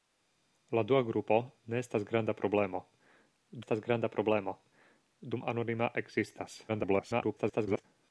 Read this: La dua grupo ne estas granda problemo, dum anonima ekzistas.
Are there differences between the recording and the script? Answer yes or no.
yes